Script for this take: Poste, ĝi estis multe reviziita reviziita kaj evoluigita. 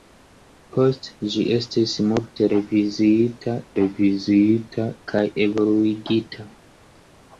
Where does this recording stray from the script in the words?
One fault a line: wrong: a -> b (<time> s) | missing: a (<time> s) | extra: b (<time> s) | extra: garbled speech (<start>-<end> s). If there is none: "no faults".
no faults